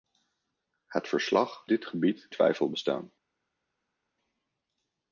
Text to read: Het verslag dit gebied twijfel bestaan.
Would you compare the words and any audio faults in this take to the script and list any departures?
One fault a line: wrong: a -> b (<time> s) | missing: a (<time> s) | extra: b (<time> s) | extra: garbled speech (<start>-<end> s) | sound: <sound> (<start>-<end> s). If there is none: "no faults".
no faults